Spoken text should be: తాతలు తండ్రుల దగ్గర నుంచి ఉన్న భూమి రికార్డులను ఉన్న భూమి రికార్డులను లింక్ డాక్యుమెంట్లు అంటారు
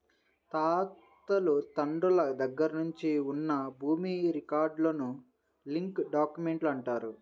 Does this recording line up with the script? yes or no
no